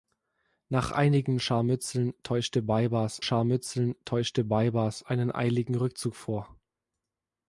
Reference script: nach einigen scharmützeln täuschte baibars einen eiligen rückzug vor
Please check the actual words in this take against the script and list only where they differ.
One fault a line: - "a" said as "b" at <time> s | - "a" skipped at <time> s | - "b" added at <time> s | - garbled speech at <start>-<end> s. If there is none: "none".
- "scharmützeln täuschte baibars" added at 3.2 s